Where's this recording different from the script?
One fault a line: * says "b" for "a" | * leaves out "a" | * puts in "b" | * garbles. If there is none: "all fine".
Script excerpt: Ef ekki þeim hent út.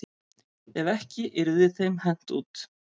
* puts in "yrði"